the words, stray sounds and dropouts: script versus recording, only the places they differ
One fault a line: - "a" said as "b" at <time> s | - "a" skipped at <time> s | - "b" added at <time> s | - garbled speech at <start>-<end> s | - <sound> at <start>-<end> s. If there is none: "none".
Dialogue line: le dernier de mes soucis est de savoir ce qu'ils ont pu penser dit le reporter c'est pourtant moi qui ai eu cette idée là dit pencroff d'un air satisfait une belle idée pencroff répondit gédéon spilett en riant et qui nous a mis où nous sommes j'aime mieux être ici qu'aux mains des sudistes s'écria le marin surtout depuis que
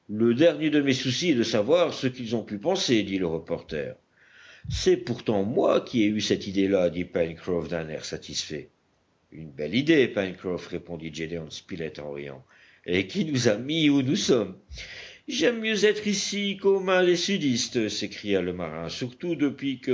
none